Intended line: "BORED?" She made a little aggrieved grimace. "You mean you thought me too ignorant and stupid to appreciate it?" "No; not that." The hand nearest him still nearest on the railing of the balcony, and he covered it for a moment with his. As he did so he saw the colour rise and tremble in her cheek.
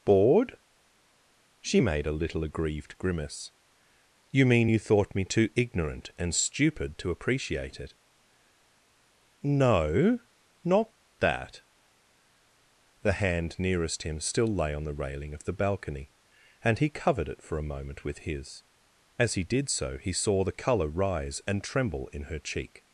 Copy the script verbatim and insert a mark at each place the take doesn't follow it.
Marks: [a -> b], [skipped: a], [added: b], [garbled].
"BORED?" She made a little aggrieved grimace. "You mean you thought me too ignorant and stupid to appreciate it?" "No; not that." The hand nearest him still [nearest -> lay] on the railing of the balcony, and he covered it for a moment with his. As he did so he saw the colour rise and tremble in her cheek.